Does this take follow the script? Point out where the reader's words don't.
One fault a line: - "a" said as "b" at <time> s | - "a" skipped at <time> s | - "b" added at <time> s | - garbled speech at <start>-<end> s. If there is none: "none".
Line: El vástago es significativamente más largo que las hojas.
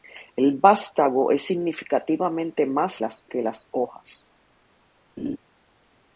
- "largo" said as "las" at 3.0 s